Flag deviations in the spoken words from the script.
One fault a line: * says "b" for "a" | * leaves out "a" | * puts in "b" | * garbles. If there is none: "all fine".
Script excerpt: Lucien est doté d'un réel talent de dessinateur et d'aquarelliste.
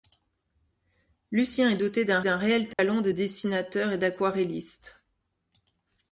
* puts in "d'un"